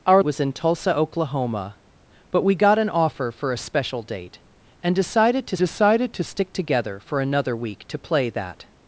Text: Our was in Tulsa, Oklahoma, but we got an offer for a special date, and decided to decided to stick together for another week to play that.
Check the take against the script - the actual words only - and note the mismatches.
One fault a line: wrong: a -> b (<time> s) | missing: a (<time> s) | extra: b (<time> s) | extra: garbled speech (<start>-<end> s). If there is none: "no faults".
no faults